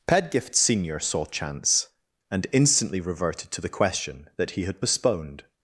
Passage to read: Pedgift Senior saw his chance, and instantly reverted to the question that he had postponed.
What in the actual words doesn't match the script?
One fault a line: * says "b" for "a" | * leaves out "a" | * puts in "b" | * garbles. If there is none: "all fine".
* leaves out "his"